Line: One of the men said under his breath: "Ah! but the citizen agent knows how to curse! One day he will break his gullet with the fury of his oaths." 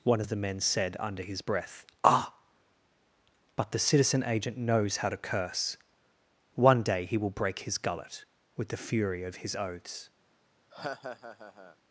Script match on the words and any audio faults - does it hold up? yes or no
no